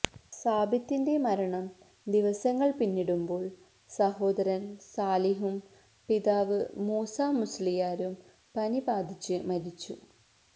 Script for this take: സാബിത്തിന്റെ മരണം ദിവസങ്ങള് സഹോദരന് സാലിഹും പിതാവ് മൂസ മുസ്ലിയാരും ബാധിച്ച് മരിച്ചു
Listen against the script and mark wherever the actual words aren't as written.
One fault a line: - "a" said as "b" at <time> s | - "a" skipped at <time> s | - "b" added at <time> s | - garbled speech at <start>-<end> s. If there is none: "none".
- "പിന്നിടുമ്പോള്" added at 2.8 s
- "പനി" added at 8.6 s